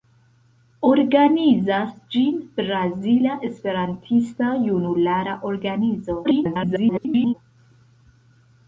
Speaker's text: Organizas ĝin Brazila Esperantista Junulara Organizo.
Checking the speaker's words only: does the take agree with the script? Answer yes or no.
no